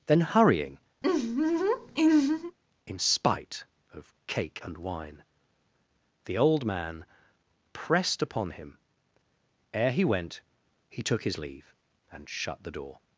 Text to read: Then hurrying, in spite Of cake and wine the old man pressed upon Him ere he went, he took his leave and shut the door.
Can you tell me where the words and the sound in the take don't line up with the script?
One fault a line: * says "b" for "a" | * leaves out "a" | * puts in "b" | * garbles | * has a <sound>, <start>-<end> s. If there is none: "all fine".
* has a laugh, 1.0-2.6 s